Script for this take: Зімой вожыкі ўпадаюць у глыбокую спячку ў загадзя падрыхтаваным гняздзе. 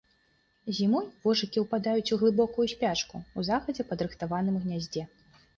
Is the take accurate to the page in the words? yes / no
yes